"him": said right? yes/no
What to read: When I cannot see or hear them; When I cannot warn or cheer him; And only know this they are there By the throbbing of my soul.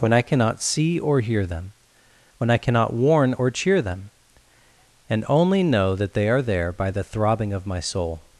no